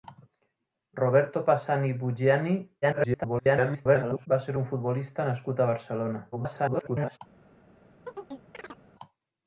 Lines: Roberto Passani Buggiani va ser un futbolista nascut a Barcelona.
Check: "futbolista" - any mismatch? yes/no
no